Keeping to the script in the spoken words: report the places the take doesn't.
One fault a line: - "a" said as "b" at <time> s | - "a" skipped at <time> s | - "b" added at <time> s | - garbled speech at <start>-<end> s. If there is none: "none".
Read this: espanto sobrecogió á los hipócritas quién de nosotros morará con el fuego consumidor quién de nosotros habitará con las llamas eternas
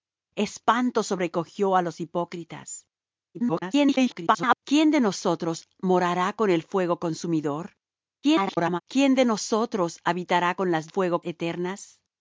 - garbled speech at 3.3-4.6 s
- garbled speech at 8.2-8.8 s
- "llamas" said as "fuego" at 10.9 s